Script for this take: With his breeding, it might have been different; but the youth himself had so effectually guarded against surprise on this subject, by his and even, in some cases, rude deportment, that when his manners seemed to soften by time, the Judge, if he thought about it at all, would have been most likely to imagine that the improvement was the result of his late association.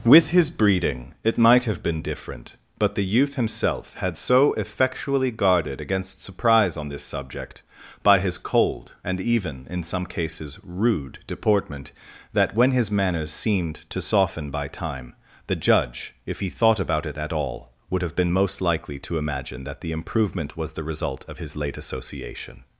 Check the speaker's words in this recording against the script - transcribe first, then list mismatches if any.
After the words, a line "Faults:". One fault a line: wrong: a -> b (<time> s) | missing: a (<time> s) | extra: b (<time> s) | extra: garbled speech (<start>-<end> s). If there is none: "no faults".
With his breeding, it might have been different; but the youth himself had so effectually guarded against surprise on this subject, by his cold and even, in some cases, rude deportment, that when his manners seemed to soften by time, the Judge, if he thought about it at all, would have been most likely to imagine that the improvement was the result of his late association.
Faults:
extra: cold (8.4 s)